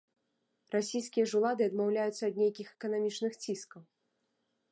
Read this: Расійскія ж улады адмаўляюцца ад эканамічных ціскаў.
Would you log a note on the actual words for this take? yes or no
yes